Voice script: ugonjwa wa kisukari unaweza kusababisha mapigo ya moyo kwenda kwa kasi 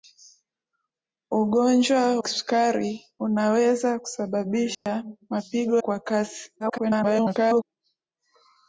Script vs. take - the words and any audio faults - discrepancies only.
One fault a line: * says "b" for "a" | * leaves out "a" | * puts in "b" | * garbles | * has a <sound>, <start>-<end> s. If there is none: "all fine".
* leaves out "wa"
* has a dropout, 4.7-4.9 s
* leaves out "ya moyo kwenda"
* garbles